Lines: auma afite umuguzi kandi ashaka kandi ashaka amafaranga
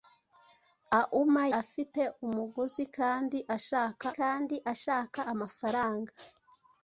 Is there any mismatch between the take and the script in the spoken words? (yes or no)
no